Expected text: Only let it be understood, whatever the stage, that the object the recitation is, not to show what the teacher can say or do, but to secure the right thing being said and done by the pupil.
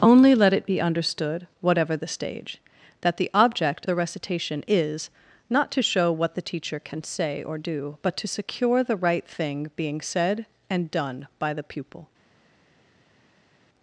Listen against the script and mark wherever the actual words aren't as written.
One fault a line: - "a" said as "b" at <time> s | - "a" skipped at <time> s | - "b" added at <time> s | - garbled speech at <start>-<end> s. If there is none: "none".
none